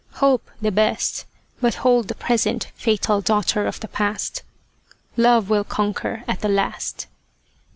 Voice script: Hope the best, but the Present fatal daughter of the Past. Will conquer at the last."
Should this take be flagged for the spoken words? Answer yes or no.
yes